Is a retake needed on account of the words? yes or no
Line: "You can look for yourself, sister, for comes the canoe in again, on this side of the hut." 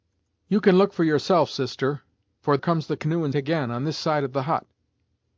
no